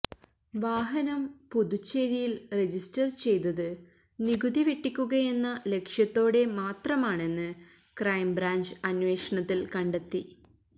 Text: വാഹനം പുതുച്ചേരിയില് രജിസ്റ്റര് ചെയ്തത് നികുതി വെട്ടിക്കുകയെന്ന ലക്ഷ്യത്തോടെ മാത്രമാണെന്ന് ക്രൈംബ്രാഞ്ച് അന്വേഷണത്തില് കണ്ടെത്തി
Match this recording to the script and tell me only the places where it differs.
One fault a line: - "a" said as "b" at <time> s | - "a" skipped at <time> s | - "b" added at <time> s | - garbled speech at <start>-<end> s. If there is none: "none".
none